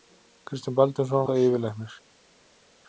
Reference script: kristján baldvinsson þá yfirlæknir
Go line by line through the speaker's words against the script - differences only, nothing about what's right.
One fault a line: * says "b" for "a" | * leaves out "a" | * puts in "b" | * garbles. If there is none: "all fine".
all fine